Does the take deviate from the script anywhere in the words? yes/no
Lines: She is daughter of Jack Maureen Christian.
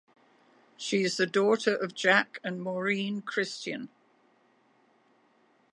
yes